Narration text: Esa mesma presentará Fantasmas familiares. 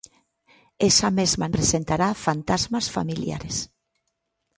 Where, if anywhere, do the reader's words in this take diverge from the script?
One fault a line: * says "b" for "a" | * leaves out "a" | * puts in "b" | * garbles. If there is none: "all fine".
all fine